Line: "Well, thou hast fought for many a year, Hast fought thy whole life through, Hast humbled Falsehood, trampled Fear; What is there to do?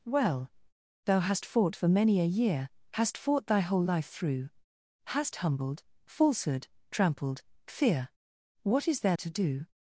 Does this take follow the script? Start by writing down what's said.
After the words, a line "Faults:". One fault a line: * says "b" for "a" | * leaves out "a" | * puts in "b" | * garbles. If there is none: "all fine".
"Well, thou hast fought for many a year, Hast fought thy whole life through, Hast humbled Falsehood, trampled Fear; What is there to do?
Faults:
all fine